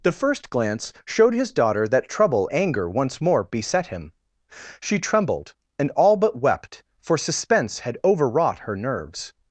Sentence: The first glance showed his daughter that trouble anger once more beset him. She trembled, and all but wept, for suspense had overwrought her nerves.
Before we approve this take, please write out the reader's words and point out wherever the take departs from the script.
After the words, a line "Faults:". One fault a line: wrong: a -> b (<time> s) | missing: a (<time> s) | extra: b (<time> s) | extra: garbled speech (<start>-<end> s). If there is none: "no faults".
The first glance showed his daughter that trouble anger once more beset him. She trembled, and all but wept, for suspense had overwrought her nerves.
Faults:
no faults